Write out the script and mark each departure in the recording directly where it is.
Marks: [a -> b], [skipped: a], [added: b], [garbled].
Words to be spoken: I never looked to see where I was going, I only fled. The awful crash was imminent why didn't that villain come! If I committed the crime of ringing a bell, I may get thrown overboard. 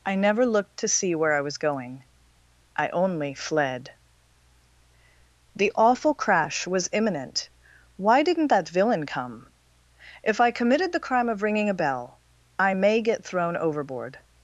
I never looked to see where I was going, I only fled. The awful crash was imminent why didn't that villain come! If I committed the crime of ringing a bell, I may get thrown overboard.